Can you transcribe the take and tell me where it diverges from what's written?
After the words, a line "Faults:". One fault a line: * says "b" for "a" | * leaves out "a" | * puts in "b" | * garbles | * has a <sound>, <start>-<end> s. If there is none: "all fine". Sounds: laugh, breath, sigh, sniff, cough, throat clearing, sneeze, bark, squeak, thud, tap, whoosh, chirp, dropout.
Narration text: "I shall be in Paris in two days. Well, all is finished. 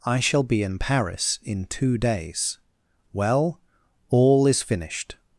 "I shall be in Paris in two days. Well, all is finished.
Faults:
all fine